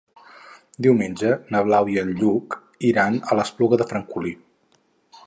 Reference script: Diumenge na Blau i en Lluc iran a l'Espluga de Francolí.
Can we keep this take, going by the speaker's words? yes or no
yes